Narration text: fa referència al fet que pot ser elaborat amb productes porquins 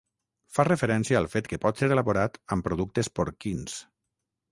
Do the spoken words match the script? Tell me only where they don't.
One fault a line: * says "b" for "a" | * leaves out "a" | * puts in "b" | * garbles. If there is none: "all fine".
all fine